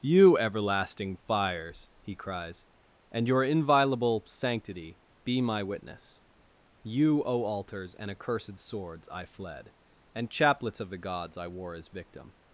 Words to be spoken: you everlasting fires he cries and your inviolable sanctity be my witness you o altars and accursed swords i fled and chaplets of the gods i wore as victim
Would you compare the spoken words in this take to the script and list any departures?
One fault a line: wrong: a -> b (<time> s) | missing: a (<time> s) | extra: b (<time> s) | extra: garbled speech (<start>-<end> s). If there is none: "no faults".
no faults